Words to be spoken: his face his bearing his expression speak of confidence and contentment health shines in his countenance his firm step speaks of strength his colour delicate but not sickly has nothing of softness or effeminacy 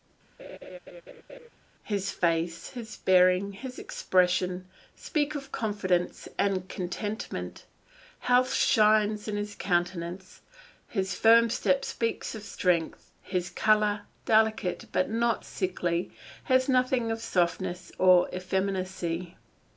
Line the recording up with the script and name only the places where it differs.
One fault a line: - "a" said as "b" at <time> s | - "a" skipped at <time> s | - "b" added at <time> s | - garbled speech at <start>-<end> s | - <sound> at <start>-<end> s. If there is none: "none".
- laugh at 0.4-1.5 s